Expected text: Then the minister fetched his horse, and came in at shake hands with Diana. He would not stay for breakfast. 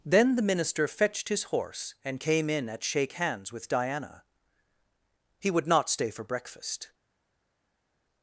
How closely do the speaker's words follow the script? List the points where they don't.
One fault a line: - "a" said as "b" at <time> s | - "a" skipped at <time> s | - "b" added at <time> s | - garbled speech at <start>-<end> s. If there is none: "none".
none